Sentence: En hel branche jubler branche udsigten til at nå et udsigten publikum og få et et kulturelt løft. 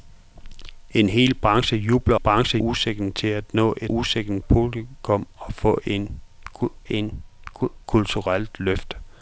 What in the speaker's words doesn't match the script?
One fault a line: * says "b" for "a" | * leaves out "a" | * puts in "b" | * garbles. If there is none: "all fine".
all fine